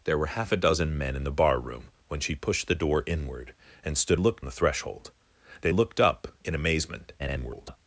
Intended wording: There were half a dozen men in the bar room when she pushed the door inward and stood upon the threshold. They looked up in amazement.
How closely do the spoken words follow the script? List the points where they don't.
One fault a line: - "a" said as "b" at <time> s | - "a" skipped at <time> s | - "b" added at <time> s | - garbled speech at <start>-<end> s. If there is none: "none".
- "upon" said as "looked" at 4.2 s
- garbled speech at 7.2-7.8 s